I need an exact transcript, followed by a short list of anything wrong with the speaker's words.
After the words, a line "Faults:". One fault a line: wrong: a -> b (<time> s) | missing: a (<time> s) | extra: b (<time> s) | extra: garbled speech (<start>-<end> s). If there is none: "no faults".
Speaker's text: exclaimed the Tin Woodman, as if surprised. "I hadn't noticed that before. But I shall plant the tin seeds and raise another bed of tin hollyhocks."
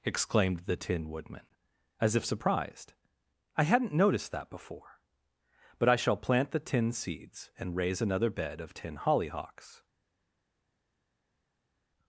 exclaimed the Tin Woodman, as if surprised. "I hadn't noticed that before. But I shall plant the tin seeds and raise another bed of tin hollyhocks."
Faults:
no faults